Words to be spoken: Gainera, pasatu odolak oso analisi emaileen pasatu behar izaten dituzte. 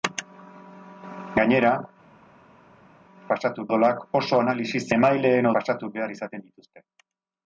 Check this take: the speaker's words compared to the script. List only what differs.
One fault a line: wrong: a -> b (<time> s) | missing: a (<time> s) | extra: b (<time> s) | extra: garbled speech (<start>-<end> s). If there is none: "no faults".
no faults